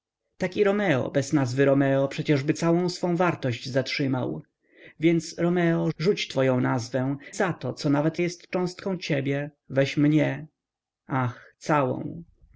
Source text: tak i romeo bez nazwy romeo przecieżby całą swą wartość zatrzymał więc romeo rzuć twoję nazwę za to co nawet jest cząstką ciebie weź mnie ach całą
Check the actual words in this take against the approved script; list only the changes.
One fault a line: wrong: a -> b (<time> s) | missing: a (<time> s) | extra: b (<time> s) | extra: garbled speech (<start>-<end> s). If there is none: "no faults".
no faults